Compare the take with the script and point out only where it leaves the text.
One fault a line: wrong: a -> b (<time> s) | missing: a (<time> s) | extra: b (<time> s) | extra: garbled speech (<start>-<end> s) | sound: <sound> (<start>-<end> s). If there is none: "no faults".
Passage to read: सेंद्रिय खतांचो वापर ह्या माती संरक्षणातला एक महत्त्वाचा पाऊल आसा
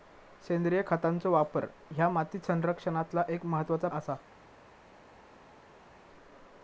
missing: पाऊल (3.9 s)